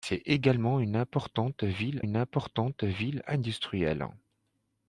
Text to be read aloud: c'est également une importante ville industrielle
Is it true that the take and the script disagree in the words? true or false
true